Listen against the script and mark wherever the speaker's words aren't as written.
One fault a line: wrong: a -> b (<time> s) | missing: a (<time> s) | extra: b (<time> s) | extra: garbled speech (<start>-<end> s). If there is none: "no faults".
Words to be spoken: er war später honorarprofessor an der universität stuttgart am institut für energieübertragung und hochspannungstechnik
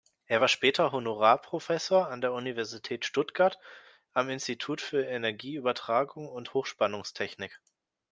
no faults